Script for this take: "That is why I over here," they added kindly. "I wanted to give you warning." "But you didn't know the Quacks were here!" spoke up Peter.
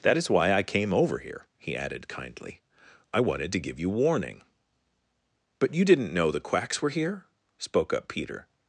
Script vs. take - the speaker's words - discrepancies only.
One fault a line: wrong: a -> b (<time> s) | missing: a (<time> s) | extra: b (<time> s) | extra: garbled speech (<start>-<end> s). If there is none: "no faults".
extra: came (0.6 s)
wrong: they -> he (1.6 s)